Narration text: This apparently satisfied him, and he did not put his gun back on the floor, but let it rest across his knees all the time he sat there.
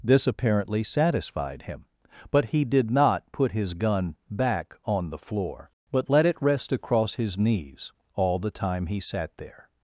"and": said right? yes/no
no